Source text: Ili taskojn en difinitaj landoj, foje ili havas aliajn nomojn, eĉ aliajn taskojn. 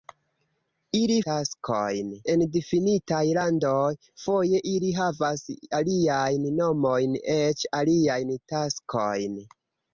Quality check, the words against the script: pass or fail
pass